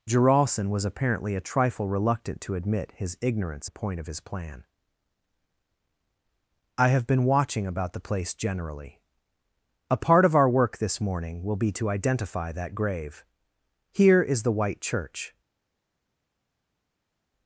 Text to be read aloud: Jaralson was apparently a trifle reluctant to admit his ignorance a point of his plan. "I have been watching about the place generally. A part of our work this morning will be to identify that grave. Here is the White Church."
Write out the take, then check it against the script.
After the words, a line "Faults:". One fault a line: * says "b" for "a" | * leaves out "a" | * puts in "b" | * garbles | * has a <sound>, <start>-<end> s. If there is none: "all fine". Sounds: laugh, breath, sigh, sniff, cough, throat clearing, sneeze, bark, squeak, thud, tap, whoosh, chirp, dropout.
Jaralson was apparently a trifle reluctant to admit his ignorance a point of his plan. "I have been watching about the place generally. A part of our work this morning will be to identify that grave. Here is the White Church."
Faults:
all fine